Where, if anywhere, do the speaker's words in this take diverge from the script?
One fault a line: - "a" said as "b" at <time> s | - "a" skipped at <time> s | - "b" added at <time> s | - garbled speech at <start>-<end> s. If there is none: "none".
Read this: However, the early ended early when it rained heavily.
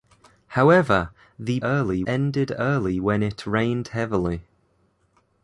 none